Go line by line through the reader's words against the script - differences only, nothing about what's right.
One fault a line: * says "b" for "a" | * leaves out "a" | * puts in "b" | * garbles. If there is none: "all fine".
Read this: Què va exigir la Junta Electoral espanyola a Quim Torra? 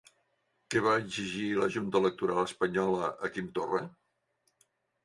all fine